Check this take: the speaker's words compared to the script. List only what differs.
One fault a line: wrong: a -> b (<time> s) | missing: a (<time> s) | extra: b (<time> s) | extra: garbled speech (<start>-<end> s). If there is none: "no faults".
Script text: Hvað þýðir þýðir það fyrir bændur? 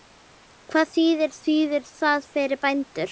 no faults